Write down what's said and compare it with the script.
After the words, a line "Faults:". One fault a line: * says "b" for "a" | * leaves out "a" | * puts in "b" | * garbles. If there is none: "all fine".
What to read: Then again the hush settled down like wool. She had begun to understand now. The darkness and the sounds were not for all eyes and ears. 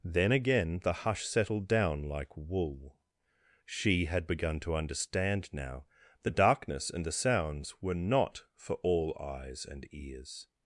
Then again the hush settled down like wool. She had begun to understand now. The darkness and the sounds were not for all eyes and ears.
Faults:
all fine